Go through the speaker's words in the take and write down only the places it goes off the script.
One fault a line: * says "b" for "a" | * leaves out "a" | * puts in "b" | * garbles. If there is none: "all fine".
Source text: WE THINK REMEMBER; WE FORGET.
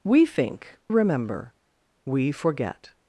all fine